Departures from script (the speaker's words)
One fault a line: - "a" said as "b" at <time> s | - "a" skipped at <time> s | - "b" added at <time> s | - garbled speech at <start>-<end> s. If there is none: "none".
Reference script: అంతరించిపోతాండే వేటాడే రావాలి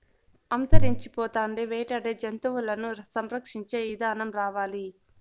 - "జంతువులను సంరక్షించే ఇదానం" added at 2.2 s